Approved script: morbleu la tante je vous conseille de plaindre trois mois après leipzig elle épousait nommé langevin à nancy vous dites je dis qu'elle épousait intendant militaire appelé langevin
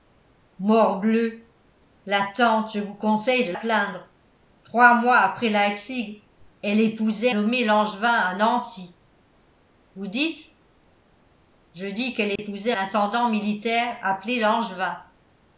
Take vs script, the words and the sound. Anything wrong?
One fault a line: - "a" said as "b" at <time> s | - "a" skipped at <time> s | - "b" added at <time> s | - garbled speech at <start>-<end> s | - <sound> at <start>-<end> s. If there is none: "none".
- dropout at 12.4-12.4 s